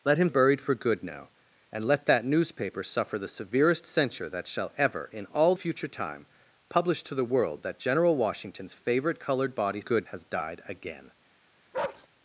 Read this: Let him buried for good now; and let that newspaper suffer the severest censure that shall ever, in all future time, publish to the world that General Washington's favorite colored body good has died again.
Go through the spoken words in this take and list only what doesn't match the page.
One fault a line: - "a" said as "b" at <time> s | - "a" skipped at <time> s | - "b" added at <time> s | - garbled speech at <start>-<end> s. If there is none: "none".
none